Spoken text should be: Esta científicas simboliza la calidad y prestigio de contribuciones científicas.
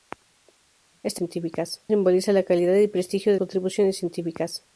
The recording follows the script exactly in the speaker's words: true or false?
true